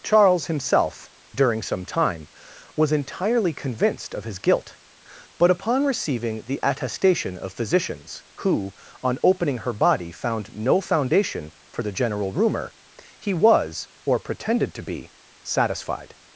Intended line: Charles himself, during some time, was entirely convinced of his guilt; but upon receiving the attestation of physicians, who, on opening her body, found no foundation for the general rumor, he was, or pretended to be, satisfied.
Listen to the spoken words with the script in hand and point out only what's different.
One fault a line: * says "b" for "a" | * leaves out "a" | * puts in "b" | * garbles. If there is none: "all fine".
all fine